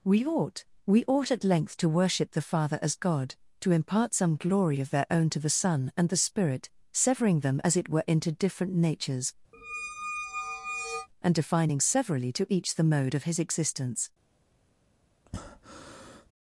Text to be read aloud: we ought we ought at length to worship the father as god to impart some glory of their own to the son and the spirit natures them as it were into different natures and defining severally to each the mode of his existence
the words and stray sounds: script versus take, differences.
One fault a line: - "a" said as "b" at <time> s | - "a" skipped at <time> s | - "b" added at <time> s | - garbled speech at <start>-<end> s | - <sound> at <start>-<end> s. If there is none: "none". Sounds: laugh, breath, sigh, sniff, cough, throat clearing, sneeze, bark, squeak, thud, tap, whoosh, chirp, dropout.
- "natures" said as "severing" at 6.9 s
- squeak at 9.5-11.1 s
- breath at 15.2-16.3 s